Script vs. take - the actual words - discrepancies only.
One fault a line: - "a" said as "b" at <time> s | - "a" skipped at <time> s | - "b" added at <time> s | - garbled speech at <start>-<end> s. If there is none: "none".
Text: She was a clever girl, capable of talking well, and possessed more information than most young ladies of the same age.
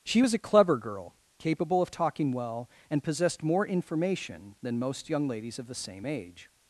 none